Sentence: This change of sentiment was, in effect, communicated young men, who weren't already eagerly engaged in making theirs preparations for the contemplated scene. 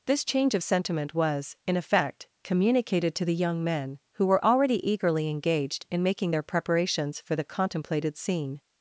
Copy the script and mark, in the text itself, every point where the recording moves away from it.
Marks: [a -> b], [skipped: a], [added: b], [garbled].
This change of sentiment was, in effect, communicated [added: to the] young men, who [weren't -> were] already eagerly engaged in making [theirs -> their] preparations for the contemplated scene.